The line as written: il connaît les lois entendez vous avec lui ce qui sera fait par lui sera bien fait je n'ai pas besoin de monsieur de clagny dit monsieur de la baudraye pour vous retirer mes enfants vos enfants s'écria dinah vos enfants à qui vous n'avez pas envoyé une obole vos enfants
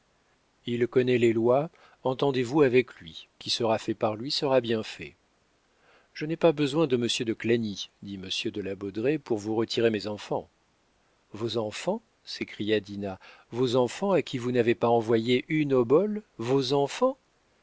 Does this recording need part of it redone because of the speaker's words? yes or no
yes